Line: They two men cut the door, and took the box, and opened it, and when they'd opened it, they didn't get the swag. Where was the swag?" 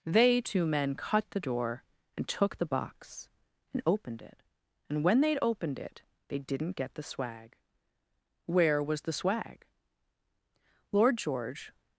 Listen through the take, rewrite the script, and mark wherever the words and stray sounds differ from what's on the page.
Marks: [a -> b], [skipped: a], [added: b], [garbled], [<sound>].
They two men cut the door, and took the box, and opened it, and when they'd opened it, they didn't get the swag. Where was the swag?" [added: Lord George]